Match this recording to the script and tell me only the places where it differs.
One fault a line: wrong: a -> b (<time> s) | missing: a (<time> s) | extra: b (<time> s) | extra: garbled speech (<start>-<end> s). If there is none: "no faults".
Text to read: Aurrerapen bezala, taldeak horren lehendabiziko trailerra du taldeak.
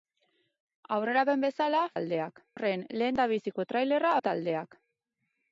no faults